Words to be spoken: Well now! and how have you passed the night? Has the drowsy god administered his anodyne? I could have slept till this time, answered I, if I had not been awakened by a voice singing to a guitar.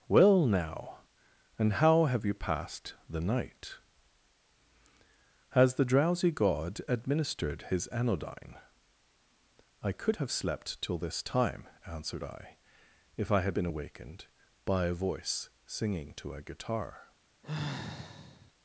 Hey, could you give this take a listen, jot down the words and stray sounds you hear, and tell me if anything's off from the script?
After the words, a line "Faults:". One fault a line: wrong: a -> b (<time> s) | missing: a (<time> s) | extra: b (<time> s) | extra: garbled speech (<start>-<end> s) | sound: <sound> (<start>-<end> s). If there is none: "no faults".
Well now! and how have you passed the night? Has the drowsy god administered his anodyne? I could have slept till this time, answered I, if I had been awakened by a voice singing to a guitar.
Faults:
missing: not (13.6 s)
sound: sigh (17.4-18.5 s)